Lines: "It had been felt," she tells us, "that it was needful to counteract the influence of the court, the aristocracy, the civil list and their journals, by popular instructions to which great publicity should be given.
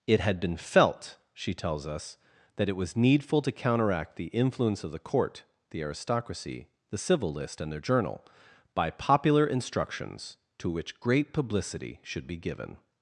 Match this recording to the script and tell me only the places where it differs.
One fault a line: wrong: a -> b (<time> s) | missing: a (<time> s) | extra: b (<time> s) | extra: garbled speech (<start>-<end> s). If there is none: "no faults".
wrong: journals -> journal (7.8 s)